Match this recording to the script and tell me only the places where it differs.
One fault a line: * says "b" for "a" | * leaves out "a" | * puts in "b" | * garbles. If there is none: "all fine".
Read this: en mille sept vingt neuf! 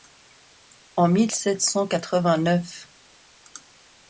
* puts in "cent quatre"